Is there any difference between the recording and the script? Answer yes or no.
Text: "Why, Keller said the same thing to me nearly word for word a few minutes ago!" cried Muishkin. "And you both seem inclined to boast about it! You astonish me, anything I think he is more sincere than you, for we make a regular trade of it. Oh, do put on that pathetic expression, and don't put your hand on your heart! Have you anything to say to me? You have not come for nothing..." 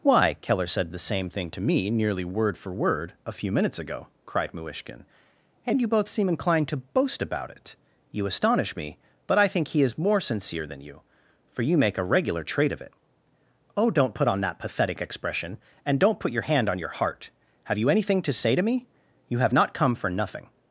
yes